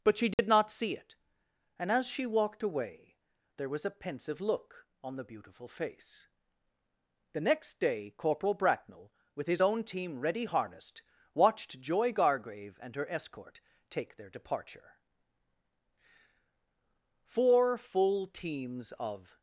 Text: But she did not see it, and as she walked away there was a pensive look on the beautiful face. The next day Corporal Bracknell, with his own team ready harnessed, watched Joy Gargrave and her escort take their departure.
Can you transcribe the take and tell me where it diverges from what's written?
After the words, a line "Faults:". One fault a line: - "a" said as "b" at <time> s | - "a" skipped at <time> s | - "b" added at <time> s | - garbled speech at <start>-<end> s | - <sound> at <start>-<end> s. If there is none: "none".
But she did not see it, and as she walked away there was a pensive look on the beautiful face. The next day Corporal Bracknell, with his own team ready harnessed, watched Joy Gargrave and her escort take their departure. Four full teams of
Faults:
- dropout at 0.3-0.4 s
- "Four full teams of" added at 17.2 s